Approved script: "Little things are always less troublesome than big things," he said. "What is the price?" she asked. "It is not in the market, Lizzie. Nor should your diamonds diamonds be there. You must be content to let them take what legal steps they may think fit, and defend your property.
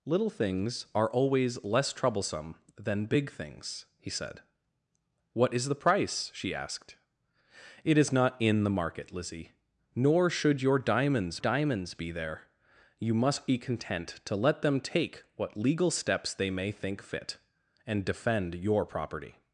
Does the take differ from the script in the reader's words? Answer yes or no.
no